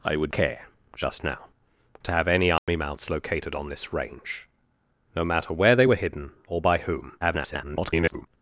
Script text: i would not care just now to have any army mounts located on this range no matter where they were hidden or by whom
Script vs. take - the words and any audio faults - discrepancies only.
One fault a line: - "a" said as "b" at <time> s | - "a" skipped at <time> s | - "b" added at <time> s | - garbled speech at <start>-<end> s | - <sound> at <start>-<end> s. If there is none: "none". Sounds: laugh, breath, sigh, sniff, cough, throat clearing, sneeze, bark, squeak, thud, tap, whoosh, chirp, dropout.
- "not" skipped at 0.3 s
- dropout at 2.6-2.7 s
- garbled speech at 7.2-8.3 s